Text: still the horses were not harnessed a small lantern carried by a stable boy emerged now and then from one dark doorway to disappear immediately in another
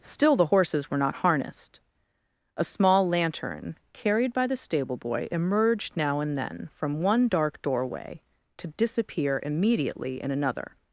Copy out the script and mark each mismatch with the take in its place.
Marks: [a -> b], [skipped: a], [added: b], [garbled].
still the horses were not harnessed a small lantern carried by [a -> the] stable boy emerged now and then from one dark doorway to disappear immediately in another